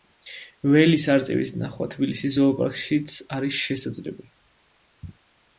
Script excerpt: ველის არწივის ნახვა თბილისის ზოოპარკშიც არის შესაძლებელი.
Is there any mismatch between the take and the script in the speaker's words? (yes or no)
no